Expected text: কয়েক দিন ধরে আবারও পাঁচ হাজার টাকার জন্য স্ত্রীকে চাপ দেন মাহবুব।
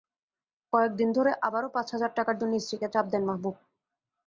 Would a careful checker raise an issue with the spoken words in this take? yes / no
no